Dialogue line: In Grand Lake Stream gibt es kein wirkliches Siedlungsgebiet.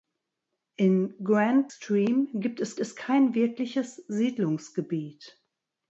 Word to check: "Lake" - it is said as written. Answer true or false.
false